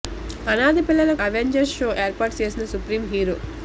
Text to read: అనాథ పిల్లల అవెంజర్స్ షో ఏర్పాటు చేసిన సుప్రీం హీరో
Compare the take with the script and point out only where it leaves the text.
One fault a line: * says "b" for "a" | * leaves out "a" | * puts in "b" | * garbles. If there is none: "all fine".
all fine